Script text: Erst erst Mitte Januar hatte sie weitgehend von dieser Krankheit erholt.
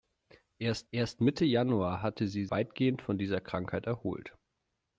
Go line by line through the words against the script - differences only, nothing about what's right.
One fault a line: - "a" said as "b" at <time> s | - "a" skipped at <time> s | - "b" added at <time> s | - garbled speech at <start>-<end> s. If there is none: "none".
none